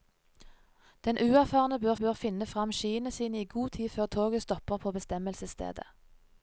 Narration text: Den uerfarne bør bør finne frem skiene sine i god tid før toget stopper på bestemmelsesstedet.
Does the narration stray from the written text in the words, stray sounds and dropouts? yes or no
no